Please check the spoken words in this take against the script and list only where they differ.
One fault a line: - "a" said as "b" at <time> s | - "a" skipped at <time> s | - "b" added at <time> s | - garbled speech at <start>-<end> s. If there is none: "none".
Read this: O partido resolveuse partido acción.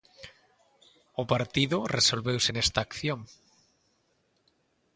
- "partido" said as "nesta" at 2.5 s